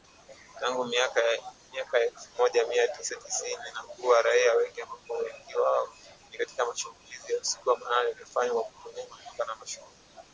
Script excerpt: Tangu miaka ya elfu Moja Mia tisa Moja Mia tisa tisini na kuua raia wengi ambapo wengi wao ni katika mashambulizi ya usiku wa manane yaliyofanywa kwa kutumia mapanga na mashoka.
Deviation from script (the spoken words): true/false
true